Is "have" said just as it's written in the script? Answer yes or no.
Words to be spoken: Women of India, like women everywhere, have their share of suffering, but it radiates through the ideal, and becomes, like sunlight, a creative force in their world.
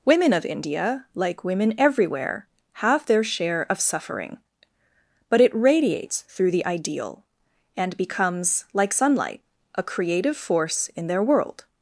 yes